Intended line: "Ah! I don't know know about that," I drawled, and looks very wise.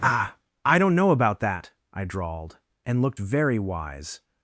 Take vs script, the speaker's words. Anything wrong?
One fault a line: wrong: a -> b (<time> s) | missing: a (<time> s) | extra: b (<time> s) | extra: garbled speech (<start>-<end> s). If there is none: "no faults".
missing: know (1.1 s)
wrong: looks -> looked (3.0 s)